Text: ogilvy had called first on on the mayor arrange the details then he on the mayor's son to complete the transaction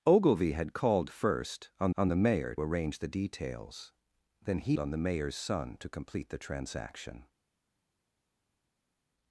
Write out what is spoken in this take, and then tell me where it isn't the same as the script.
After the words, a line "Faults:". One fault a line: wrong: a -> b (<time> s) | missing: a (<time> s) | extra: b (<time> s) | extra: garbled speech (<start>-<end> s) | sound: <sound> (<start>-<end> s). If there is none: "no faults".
ogilvy had called first on on the mayor arrange the details then he on the mayor's son to complete the transaction
Faults:
no faults